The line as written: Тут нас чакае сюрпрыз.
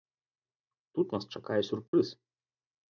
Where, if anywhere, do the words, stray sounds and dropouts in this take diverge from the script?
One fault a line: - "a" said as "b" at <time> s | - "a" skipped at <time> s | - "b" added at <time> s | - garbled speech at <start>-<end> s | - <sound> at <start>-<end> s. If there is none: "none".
- dropout at 1.9-1.9 s